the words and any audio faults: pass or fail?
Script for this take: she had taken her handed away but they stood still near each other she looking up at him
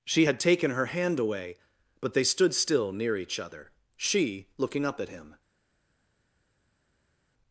fail